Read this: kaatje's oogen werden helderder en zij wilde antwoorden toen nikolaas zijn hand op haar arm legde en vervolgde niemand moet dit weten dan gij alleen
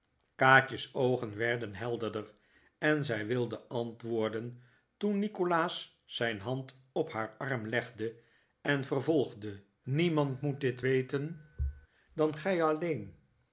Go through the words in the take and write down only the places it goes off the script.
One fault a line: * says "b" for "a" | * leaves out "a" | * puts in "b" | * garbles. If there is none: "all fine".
all fine